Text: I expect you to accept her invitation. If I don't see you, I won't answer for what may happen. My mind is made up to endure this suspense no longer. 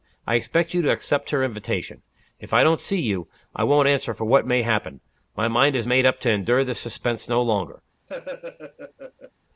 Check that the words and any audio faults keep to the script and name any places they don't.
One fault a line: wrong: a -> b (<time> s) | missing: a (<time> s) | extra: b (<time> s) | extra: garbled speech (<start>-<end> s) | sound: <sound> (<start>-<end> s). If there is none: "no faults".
sound: laugh (8.1-9.3 s)